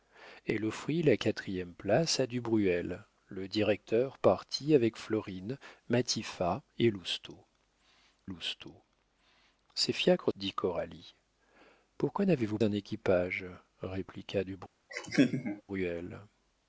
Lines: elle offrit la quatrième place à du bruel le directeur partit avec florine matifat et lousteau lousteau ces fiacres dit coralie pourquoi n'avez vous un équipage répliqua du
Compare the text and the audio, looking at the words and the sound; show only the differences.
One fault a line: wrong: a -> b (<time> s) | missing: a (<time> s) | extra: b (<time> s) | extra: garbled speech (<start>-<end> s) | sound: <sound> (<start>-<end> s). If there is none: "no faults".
sound: laugh (14.9-15.6 s)